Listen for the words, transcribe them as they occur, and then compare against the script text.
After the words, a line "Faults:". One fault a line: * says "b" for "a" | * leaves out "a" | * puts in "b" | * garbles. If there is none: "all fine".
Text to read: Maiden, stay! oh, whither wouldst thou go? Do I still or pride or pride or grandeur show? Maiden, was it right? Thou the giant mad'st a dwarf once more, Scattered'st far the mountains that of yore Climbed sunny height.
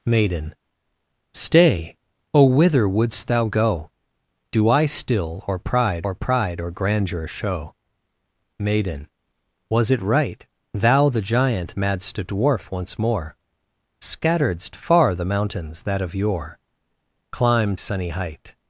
Maiden, stay! oh, whither wouldst thou go? Do I still or pride or pride or grandeur show? Maiden, was it right? Thou the giant mad'st a dwarf once more, Scattered'st far the mountains that of yore Climbed sunny height.
Faults:
all fine